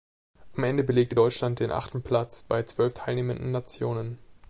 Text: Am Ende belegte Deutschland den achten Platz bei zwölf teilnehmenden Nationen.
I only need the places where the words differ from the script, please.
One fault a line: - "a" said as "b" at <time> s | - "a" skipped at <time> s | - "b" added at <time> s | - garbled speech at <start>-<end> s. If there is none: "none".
none